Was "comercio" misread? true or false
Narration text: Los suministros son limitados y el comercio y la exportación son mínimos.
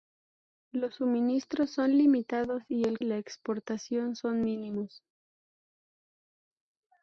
true